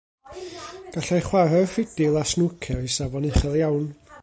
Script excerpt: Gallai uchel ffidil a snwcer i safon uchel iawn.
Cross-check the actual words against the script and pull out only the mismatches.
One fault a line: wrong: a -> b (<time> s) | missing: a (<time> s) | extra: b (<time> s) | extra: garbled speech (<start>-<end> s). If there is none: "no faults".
wrong: uchel -> chwarae'r (1.2 s)